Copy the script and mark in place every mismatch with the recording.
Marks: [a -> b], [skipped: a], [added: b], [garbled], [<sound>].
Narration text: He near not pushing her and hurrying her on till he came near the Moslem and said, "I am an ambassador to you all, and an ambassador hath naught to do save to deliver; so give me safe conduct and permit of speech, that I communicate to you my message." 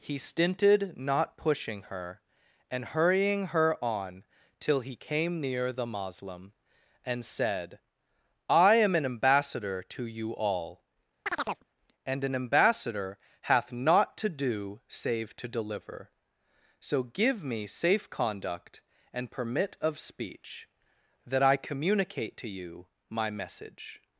He [near -> stinted] not pushing her and hurrying her on till he came near the Moslem and said, "I am an ambassador to you all, [chirp] and an ambassador hath naught to do save to deliver; so give me safe conduct and permit of speech, that I communicate to you my message."